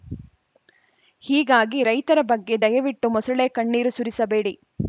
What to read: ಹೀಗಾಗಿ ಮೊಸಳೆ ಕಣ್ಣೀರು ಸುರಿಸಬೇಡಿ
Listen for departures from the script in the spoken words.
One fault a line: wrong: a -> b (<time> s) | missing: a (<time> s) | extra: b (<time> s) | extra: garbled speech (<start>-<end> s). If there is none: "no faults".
extra: ರೈತರ ಬಗ್ಗೆ ದಯವಿಟ್ಟು (1.8 s)